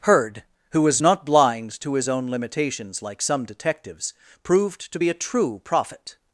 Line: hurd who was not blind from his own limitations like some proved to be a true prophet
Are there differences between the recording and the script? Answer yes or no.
yes